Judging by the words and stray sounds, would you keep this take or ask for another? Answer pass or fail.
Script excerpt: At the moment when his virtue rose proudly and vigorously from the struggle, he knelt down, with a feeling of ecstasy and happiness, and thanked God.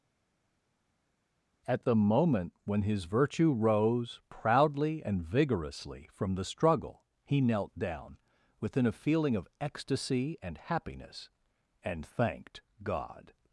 fail